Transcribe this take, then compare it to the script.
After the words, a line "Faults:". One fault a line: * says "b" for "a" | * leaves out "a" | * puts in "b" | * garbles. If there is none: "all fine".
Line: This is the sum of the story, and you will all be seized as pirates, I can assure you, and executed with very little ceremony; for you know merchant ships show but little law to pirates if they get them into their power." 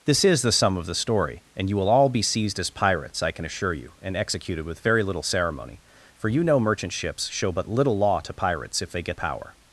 This is the sum of the story, and you will all be seized as pirates, I can assure you, and executed with very little ceremony; for you know merchant ships show but little law to pirates if they get power."
Faults:
* leaves out "them into their"